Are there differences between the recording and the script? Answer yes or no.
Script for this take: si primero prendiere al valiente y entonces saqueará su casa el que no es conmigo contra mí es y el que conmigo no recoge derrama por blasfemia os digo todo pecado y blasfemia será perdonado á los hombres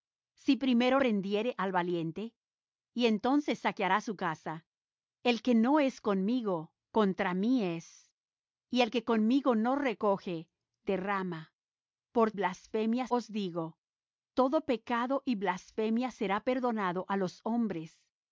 no